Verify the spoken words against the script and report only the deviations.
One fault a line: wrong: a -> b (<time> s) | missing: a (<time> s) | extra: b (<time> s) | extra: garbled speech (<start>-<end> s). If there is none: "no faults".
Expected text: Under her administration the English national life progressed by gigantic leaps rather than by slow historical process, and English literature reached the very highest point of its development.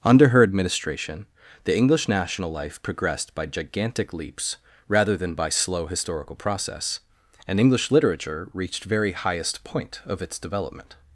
missing: the (8.8 s)